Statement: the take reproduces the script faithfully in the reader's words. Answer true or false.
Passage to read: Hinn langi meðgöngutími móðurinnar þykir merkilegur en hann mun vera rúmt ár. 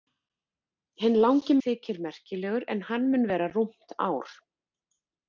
false